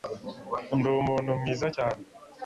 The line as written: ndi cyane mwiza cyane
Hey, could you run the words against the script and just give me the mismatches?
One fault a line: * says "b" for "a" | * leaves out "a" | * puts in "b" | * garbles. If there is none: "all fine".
* says "umuntu" for "cyane"